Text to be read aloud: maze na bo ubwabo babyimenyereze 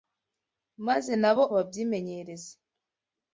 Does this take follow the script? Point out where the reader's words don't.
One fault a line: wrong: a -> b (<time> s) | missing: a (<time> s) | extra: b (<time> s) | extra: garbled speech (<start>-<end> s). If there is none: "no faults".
missing: ubwabo (1.4 s)